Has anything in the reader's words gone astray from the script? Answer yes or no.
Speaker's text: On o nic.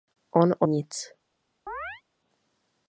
no